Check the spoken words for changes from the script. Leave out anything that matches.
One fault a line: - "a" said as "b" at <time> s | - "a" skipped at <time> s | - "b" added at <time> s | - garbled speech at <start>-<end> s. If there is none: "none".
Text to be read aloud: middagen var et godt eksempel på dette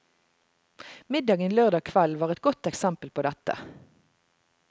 - "lørdag kveld" added at 1.6 s